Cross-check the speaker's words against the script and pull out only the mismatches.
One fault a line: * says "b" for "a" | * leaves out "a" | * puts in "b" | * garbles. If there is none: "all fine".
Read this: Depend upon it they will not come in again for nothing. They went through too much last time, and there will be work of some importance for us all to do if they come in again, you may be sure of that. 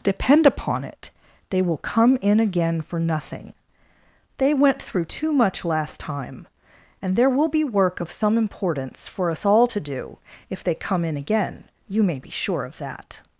* leaves out "not"